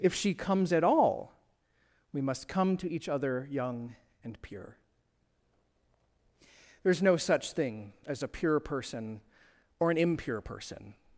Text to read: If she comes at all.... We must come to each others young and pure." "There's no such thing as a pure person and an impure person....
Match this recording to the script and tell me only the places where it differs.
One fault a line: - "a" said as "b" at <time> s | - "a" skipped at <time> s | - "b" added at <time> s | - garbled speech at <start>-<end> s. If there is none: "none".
- "others" said as "other" at 3.1 s
- "and" said as "or" at 9.8 s